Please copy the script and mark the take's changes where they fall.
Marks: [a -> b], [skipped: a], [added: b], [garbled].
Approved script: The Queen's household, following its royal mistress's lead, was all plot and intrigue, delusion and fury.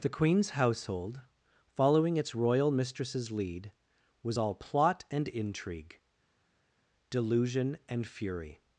The Queen's household, following its royal mistress's lead, was all plot and intrigue, delusion and fury.